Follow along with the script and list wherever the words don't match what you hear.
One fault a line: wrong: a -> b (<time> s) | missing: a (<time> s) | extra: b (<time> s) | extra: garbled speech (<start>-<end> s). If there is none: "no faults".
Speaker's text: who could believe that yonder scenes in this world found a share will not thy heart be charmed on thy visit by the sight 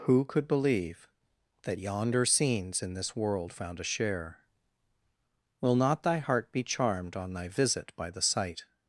no faults